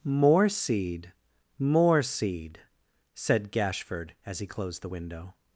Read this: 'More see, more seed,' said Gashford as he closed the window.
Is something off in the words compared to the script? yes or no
yes